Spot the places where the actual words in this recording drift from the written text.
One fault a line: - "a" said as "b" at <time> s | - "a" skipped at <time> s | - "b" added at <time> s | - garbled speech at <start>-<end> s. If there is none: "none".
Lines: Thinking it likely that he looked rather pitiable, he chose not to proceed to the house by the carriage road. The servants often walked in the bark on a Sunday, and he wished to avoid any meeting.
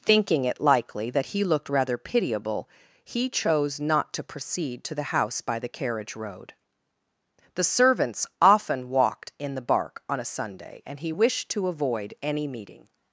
none